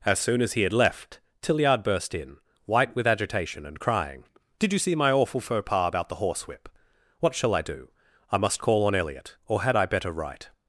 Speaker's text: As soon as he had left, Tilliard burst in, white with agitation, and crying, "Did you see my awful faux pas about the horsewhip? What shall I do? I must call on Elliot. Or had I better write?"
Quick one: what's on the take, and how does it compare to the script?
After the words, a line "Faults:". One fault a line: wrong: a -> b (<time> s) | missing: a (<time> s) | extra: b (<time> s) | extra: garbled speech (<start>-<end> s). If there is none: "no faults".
As soon as he had left, Tilliard burst in, white with agitation, and crying, "Did you see my awful faux pas about the horsewhip? What shall I do? I must call on Elliot. Or had I better write?"
Faults:
no faults